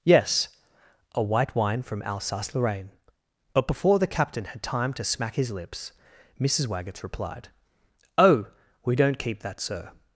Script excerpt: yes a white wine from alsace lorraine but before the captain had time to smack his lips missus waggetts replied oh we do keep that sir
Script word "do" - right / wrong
wrong